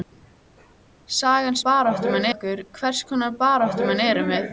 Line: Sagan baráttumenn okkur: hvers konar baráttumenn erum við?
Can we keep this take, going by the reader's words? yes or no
yes